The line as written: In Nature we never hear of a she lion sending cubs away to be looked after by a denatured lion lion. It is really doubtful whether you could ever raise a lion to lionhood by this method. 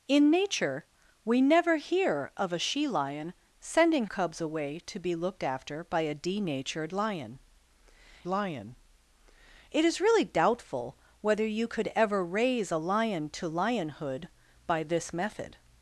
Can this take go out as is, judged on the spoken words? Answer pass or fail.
pass